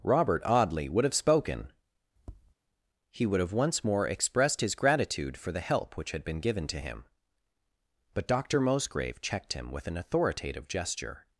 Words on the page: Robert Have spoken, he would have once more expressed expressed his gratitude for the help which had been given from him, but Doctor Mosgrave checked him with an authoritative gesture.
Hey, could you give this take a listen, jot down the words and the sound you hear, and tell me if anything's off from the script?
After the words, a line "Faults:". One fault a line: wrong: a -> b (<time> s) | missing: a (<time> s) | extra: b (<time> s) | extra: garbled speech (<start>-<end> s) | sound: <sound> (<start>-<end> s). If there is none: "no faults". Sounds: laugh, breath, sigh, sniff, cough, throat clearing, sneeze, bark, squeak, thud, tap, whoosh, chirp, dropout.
Robert Audley would have spoken, he would have once more expressed his gratitude for the help which had been given to him, but Doctor Mosgrave checked him with an authoritative gesture.
Faults:
extra: Audley would (0.5 s)
sound: tap (2.2-2.5 s)
missing: expressed (4.6 s)
wrong: from -> to (6.7 s)